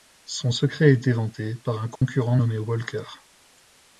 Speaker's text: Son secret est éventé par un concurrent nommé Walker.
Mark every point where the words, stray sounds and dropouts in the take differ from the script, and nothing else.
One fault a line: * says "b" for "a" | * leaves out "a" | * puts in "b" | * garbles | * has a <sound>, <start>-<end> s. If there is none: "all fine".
* has a dropout, 2.0-2.0 s